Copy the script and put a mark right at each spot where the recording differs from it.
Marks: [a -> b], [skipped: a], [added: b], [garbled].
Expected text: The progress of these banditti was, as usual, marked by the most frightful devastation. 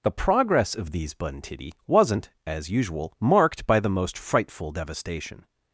The progress of these banditti [was, -> wasn't] as usual, marked by the most frightful devastation.